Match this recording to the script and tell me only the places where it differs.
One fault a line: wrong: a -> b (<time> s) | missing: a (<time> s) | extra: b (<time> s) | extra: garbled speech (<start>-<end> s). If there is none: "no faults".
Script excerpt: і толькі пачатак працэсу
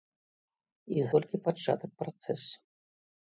no faults